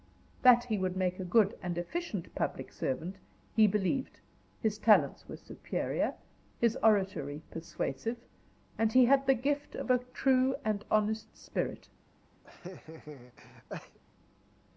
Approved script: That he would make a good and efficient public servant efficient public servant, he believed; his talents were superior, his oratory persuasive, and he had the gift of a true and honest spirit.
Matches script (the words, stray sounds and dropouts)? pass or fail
fail